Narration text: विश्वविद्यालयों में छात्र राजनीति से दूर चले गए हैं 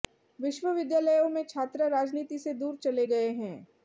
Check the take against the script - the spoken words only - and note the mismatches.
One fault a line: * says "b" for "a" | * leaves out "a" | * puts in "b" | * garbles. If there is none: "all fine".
all fine